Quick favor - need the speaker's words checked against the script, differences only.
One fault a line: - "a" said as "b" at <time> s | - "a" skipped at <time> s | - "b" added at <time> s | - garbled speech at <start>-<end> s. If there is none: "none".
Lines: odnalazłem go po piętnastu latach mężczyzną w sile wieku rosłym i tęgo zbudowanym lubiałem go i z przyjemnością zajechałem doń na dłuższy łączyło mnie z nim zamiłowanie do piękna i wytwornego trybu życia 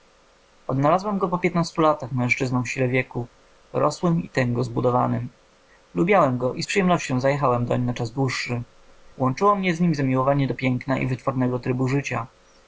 - "czas" added at 7.9 s